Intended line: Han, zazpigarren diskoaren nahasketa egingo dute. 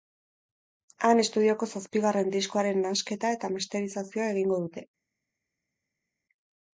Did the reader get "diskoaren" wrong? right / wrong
right